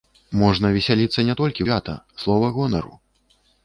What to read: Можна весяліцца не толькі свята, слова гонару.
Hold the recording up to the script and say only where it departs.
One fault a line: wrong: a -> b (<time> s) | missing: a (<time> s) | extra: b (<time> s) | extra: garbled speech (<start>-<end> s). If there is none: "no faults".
no faults